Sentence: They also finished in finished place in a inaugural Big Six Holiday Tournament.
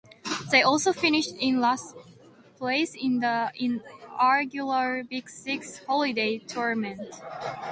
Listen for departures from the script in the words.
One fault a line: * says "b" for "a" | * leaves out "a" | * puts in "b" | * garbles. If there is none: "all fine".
* says "last" for "finished"
* says "the" for "a"